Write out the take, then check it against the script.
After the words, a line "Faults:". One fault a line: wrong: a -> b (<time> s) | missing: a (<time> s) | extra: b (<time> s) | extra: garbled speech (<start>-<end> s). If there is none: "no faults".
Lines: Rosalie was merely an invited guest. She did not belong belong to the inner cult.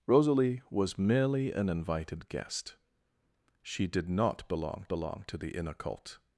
Rosalie was merely an invited guest. She did not belong belong to the inner cult.
Faults:
no faults